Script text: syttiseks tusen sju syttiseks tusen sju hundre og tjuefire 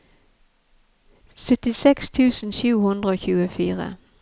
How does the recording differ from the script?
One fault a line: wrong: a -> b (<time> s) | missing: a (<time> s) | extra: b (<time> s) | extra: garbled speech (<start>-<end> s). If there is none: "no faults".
missing: syttiseks tusen sju (2.7 s)